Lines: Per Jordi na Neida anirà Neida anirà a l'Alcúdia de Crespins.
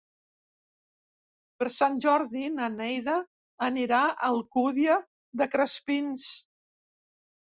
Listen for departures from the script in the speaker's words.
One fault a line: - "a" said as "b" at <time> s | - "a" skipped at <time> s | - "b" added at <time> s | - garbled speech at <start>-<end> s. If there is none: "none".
- "Sant" added at 1.7 s
- "Neida anirà" skipped at 4.0 s